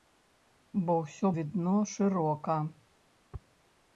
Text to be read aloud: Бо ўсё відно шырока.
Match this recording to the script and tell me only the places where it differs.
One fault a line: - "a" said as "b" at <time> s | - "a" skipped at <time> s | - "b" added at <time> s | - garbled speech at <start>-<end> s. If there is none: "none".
none